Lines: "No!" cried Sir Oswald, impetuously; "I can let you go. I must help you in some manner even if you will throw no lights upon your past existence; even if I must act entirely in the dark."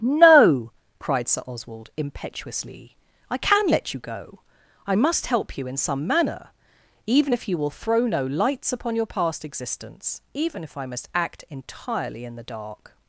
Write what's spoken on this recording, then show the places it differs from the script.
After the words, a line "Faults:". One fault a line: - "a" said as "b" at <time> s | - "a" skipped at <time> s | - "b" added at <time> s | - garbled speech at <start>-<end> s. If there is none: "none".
"No!" cried Sir Oswald, impetuously; "I can let you go. I must help you in some manner even if you will throw no lights upon your past existence; even if I must act entirely in the dark."
Faults:
none